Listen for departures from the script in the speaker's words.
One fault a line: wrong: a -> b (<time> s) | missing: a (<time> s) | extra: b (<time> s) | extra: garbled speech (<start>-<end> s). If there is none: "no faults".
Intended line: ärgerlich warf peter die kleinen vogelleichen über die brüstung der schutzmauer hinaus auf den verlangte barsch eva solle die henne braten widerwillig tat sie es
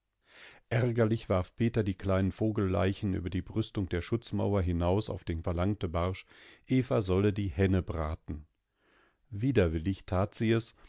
no faults